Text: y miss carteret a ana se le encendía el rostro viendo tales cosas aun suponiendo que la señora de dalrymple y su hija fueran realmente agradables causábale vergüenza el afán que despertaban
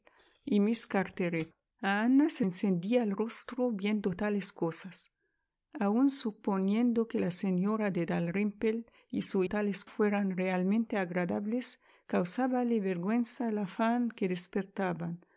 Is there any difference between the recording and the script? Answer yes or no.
yes